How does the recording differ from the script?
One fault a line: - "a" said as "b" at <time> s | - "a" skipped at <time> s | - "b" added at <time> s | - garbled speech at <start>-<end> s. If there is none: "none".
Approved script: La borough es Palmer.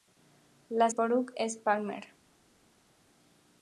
none